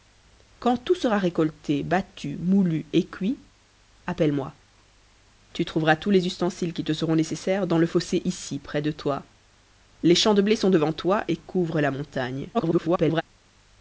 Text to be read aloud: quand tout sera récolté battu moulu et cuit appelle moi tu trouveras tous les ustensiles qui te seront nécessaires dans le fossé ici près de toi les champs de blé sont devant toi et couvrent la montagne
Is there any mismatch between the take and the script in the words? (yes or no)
yes